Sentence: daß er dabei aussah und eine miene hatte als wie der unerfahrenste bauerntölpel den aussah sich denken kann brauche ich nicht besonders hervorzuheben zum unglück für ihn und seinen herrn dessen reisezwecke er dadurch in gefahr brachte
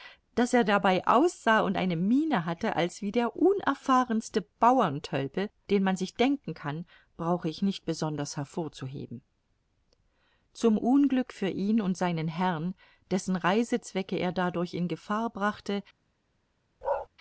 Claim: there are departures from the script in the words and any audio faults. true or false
true